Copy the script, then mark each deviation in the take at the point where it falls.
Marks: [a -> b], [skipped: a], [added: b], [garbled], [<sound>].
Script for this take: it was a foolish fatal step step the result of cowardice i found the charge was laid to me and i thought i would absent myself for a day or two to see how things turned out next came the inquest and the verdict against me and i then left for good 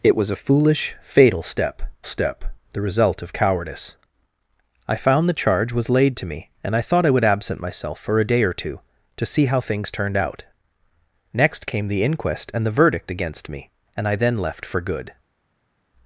it was a foolish fatal step step the result of cowardice i found the charge was laid to me and i thought i would absent myself for a day or two to see how things turned out next came the inquest and the verdict against me and i then left for good